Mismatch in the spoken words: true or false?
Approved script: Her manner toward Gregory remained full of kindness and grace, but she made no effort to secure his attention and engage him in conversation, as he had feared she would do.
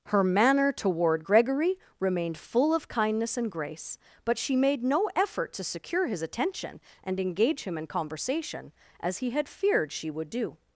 false